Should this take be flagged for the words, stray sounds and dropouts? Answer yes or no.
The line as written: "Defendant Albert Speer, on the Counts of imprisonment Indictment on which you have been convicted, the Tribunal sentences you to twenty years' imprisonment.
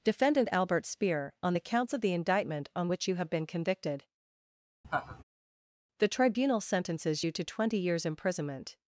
yes